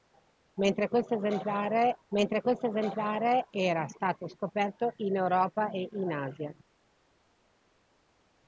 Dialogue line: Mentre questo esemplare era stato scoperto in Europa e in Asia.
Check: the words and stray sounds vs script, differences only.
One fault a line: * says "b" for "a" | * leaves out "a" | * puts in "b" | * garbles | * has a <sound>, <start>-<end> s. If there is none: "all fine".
* puts in "mentre questo esemplare"